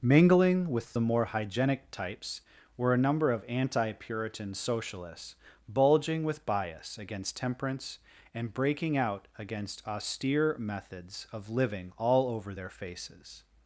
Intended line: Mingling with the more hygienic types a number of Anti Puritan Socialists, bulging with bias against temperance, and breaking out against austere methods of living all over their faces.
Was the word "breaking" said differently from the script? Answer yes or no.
no